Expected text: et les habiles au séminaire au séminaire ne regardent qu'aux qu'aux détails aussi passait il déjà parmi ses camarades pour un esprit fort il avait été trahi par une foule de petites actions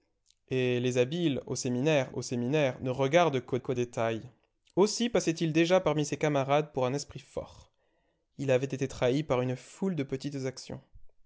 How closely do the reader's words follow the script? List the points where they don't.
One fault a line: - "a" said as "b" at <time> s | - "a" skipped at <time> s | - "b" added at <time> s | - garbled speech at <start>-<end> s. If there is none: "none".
none